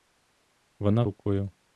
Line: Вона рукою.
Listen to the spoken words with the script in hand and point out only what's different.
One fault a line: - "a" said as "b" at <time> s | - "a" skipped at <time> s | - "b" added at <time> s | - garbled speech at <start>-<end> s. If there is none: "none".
none